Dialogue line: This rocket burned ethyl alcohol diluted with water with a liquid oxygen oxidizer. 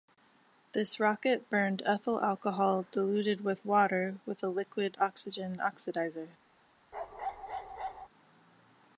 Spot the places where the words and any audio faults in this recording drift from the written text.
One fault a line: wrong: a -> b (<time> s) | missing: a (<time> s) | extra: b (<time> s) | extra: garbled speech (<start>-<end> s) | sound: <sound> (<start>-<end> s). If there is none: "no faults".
sound: bark (6.9-8.1 s)